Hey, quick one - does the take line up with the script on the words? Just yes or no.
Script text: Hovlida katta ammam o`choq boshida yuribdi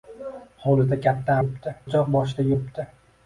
no